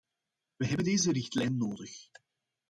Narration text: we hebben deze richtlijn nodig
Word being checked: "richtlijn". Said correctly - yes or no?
yes